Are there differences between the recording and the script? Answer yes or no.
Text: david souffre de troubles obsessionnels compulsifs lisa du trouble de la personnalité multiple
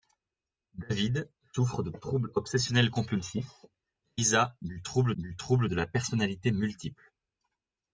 yes